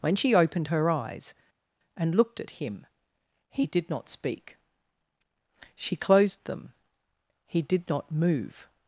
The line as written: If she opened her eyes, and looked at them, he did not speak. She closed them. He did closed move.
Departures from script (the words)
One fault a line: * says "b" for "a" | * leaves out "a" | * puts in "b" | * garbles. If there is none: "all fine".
* says "When" for "If"
* says "him" for "them"
* says "not" for "closed"